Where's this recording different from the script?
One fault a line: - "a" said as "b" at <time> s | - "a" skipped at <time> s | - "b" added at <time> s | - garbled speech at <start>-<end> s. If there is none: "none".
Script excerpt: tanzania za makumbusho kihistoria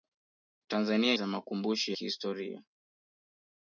none